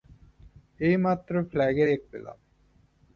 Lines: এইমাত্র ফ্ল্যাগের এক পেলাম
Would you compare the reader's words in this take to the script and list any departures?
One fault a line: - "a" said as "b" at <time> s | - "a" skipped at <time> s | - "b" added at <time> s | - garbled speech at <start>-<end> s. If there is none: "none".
none